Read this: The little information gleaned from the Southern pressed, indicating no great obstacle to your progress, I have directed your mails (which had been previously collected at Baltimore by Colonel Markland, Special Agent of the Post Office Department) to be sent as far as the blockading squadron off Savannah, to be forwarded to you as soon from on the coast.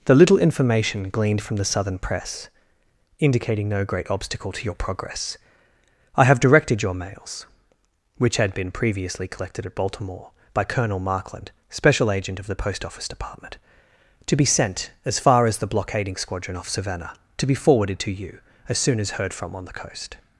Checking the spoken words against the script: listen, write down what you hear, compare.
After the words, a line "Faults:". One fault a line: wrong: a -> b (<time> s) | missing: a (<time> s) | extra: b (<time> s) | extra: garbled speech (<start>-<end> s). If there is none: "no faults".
The little information gleaned from the Southern press, indicating no great obstacle to your progress, I have directed your mails (which had been previously collected at Baltimore by Colonel Markland, Special Agent of the Post Office Department) to be sent as far as the blockading squadron off Savannah, to be forwarded to you as soon as heard from on the coast.
Faults:
wrong: pressed -> press (2.0 s)
extra: as heard (19.0 s)